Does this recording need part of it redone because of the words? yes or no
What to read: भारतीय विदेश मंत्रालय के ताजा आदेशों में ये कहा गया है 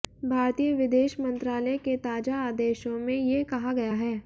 no